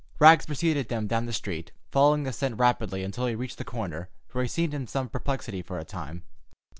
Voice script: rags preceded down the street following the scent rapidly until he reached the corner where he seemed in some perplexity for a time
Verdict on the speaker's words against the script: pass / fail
fail